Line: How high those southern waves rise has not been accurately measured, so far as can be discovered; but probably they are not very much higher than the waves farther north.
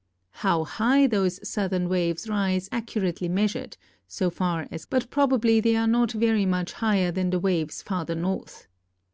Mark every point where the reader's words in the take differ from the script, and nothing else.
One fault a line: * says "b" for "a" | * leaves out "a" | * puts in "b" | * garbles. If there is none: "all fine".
* leaves out "has not been"
* leaves out "can be discovered"